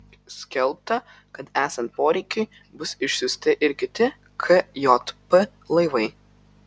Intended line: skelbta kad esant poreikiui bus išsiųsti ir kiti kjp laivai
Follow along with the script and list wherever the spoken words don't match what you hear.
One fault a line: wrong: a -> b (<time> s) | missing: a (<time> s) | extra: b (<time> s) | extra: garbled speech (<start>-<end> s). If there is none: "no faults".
no faults